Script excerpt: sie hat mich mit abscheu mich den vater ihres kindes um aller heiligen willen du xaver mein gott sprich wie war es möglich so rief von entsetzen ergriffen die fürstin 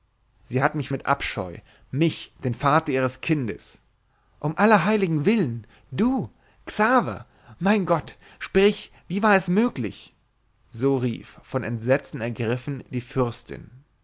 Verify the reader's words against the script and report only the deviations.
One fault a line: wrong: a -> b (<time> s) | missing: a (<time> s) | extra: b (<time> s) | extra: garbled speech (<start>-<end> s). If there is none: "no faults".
no faults